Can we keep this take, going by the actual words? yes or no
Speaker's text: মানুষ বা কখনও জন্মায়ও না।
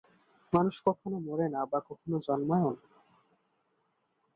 no